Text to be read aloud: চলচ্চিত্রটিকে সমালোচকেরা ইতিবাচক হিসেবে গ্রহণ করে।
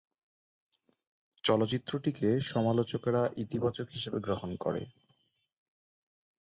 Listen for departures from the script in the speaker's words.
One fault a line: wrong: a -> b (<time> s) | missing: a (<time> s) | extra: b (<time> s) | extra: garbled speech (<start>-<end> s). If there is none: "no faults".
no faults